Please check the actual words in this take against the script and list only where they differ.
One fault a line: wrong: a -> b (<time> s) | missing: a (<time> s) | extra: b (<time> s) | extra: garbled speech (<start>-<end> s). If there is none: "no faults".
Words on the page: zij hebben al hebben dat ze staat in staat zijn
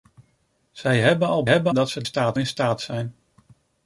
no faults